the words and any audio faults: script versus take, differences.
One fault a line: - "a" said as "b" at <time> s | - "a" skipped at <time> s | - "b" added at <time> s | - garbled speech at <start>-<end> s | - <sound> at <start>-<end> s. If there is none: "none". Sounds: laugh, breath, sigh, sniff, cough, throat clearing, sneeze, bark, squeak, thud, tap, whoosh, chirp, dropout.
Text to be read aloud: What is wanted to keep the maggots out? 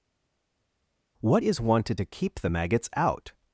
none